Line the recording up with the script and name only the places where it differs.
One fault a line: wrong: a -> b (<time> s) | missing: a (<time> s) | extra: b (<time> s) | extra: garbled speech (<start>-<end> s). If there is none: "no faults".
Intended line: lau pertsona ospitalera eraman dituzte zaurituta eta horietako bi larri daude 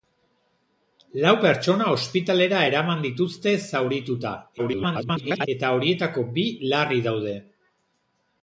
extra: garbled speech (4.6-5.5 s)